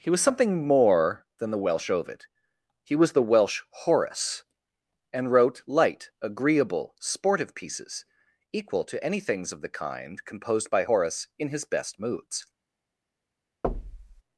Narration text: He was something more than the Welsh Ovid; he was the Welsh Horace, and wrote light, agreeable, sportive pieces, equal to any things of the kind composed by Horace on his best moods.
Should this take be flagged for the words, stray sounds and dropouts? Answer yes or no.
yes